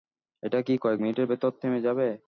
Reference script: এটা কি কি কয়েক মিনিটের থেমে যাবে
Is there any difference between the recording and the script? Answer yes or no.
yes